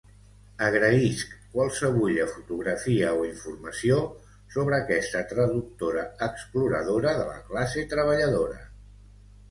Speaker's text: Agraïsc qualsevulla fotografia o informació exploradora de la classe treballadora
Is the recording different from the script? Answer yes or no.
yes